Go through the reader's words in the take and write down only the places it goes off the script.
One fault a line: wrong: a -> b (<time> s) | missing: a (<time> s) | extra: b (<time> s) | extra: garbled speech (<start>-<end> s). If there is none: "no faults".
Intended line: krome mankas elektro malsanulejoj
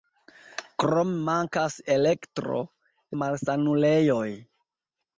no faults